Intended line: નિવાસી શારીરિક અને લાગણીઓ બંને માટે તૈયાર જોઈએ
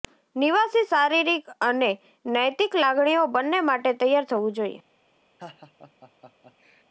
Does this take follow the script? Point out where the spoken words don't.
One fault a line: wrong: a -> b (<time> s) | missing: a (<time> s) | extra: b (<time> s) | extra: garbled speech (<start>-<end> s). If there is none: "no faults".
extra: નૈતિક (2.3 s)
extra: થવું (4.3 s)